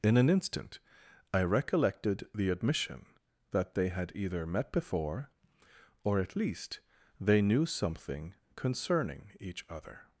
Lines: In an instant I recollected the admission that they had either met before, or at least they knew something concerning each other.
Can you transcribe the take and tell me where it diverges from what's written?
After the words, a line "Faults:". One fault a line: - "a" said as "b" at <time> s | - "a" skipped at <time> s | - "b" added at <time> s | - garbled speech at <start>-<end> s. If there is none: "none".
In an instant I recollected the admission that they had either met before, or at least they knew something concerning each other.
Faults:
none